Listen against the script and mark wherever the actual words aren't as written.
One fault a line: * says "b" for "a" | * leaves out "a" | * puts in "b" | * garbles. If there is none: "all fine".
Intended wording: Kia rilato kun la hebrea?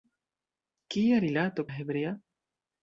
* leaves out "kun"